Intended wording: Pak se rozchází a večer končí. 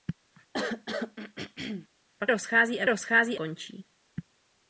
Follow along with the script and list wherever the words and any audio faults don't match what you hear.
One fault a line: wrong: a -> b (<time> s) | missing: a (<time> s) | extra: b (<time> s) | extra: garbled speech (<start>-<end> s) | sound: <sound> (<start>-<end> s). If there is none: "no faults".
sound: throat clearing (0.5-1.9 s)
missing: se (2.3 s)
wrong: večer -> rozchází (2.9 s)